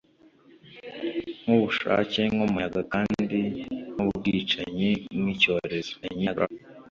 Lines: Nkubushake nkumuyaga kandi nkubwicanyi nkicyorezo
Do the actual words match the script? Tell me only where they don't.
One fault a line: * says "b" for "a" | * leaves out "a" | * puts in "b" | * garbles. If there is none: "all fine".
* garbles